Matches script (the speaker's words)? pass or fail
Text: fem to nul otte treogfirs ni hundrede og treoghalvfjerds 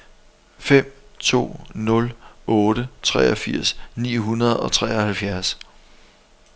pass